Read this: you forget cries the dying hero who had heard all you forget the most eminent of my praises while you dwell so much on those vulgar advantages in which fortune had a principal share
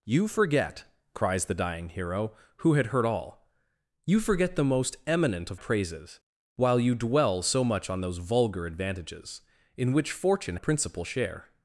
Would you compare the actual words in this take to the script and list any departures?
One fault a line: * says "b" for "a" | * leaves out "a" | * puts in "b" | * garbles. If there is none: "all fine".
* leaves out "my"
* leaves out "had"